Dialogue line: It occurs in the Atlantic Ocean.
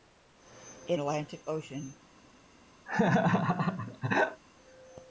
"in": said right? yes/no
no